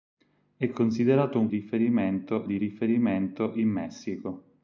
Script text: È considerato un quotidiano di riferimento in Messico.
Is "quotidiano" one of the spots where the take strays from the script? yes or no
yes